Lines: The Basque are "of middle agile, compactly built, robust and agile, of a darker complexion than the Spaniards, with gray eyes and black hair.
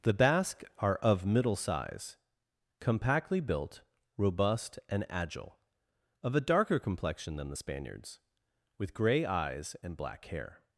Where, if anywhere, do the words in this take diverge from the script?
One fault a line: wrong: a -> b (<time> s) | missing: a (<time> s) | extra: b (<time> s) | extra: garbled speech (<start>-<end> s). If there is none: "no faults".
wrong: agile -> size (1.6 s)